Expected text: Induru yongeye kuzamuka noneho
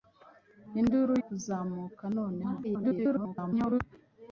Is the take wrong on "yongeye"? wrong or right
wrong